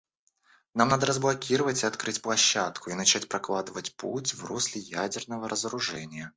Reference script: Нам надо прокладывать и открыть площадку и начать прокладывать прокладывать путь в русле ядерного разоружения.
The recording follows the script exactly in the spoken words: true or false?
false